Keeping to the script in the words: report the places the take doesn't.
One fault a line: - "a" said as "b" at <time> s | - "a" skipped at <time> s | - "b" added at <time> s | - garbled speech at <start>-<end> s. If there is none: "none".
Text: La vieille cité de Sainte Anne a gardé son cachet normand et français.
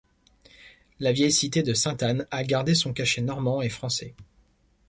none